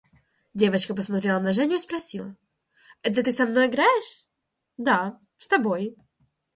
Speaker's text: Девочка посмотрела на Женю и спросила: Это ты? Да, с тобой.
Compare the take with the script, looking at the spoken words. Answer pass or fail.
fail